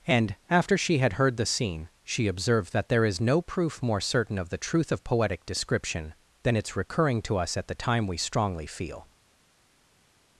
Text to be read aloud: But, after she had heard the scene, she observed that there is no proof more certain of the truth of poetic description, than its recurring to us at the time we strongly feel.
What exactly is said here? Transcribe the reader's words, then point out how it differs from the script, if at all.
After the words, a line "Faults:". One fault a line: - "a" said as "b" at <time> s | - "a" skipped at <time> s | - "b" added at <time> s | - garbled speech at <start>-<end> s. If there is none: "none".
And, after she had heard the scene, she observed that there is no proof more certain of the truth of poetic description, than its recurring to us at the time we strongly feel.
Faults:
- "But" said as "And" at 0.1 s